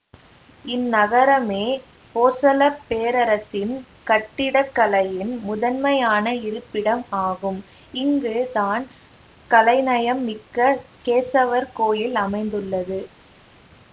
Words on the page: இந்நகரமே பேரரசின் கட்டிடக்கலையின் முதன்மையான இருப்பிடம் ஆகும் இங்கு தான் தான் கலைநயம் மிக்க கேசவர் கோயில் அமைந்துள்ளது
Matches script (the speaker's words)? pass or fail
fail